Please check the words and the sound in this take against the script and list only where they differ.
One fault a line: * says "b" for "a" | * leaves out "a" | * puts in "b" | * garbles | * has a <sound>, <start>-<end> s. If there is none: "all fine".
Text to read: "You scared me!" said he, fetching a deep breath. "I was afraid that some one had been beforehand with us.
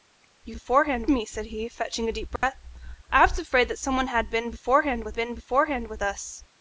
* says "beforehand" for "scared"
* has a dropout, 2.4-2.4 s
* puts in "been beforehand with"